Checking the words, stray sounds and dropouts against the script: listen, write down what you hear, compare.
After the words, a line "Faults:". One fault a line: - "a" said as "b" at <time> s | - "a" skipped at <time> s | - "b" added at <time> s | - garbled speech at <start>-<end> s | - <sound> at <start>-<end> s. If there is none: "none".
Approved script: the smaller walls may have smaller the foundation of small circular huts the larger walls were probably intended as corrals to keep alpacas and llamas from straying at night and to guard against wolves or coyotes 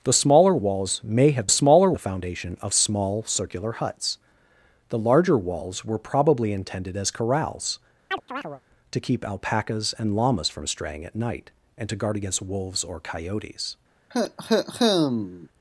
the smaller walls may have smaller the foundation of small circular huts the larger walls were probably intended as corrals to keep alpacas and llamas from straying at night and to guard against wolves or coyotes
Faults:
- chirp at 8.1-8.6 s
- cough at 14.1-15.5 s